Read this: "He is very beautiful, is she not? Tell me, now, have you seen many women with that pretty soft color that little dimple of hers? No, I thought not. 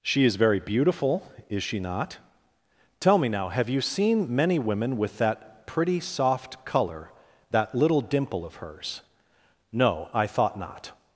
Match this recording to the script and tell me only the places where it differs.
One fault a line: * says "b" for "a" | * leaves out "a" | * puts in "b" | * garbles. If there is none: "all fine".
* says "She" for "He"